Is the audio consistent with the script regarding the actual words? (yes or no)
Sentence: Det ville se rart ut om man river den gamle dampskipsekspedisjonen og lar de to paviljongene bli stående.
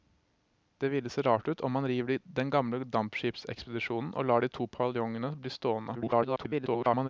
no